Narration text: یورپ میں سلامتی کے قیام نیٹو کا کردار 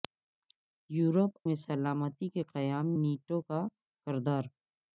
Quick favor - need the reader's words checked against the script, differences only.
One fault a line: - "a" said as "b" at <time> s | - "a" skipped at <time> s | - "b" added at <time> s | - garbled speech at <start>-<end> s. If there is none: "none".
none